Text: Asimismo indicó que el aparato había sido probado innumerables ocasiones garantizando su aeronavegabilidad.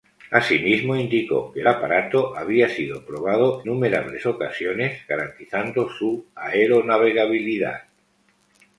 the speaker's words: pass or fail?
pass